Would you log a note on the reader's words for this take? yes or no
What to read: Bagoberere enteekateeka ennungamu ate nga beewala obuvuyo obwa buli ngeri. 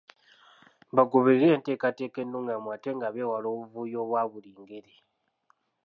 no